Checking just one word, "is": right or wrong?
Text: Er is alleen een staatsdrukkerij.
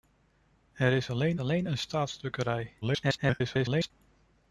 right